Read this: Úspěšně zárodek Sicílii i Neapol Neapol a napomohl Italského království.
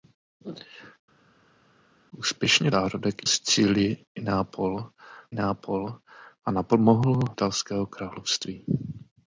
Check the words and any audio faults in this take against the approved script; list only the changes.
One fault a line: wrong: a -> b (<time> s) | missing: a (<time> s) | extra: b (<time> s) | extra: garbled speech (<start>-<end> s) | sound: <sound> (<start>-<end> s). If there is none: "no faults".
no faults